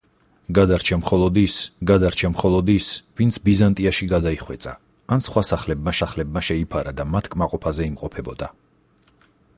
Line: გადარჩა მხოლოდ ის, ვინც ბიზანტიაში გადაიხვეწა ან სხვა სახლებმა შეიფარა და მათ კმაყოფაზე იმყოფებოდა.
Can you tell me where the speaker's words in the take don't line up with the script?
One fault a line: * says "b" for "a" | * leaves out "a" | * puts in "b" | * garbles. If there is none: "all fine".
* puts in "გადარჩა მხოლოდ ის"
* puts in "სახლებმა"